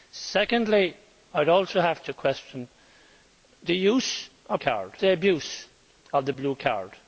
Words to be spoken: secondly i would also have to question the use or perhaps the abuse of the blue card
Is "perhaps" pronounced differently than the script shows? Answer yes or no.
yes